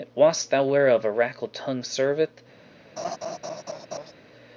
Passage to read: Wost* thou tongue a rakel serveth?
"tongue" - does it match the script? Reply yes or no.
no